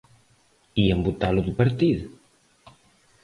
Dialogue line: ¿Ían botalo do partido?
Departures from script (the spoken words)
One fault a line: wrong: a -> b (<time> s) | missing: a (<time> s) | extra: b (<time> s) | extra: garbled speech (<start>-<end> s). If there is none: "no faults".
no faults